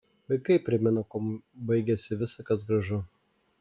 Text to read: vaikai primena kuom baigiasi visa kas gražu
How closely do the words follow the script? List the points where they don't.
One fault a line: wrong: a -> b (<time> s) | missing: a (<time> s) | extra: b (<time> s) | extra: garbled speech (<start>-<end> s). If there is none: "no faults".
no faults